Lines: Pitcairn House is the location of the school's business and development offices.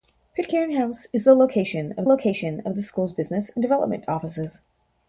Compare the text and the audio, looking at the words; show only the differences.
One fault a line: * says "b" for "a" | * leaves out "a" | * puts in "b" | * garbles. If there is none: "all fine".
* puts in "location of"